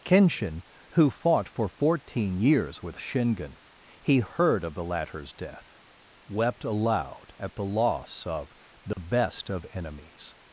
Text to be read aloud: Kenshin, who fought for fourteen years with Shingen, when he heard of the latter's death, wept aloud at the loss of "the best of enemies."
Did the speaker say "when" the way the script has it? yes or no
no